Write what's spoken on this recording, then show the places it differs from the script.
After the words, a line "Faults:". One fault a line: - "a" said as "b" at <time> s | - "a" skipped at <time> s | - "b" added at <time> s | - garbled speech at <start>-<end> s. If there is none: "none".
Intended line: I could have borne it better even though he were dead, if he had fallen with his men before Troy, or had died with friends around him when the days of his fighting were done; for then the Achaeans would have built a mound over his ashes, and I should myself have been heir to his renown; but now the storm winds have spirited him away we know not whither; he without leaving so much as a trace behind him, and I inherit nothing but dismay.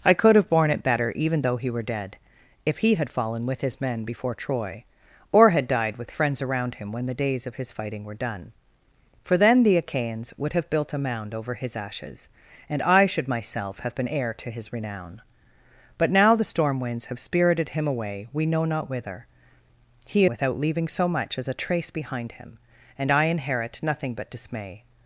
I could have borne it better even though he were dead, if he had fallen with his men before Troy, or had died with friends around him when the days of his fighting were done; for then the Achaeans would have built a mound over his ashes, and I should myself have been heir to his renown; but now the storm winds have spirited him away we know not whither; he without leaving so much as a trace behind him, and I inherit nothing but dismay.
Faults:
none